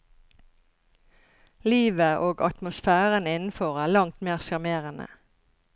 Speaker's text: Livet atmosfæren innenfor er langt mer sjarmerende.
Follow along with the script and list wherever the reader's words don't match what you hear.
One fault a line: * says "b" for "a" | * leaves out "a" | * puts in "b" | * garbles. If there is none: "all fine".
* puts in "og"